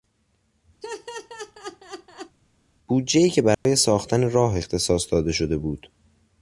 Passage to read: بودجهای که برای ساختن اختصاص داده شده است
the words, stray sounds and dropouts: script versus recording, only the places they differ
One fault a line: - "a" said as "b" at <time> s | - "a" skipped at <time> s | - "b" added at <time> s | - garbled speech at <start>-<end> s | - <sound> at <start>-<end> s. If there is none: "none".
- laugh at 0.8-2.4 s
- dropout at 3.5-3.7 s
- "راه" added at 4.3 s
- "است" said as "بود" at 5.6 s